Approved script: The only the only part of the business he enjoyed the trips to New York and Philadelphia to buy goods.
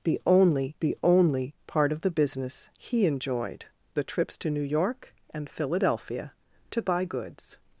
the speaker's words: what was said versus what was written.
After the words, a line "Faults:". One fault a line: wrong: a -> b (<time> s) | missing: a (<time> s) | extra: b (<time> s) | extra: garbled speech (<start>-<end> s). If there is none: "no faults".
The only the only part of the business he enjoyed the trips to New York and Philadelphia to buy goods.
Faults:
no faults